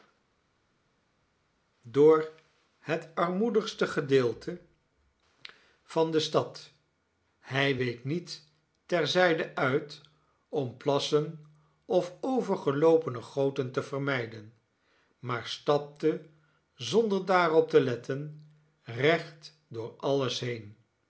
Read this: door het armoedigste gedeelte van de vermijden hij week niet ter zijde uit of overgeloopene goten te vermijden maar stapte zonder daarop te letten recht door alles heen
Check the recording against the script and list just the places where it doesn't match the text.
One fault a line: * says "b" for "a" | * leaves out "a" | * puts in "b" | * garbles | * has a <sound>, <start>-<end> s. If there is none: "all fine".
* says "stad" for "vermijden"
* puts in "om plassen"